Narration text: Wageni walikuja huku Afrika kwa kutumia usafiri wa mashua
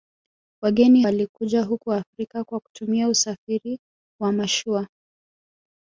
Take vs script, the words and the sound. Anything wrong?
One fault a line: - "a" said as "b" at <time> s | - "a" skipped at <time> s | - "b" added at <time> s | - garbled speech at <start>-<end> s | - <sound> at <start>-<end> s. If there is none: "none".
none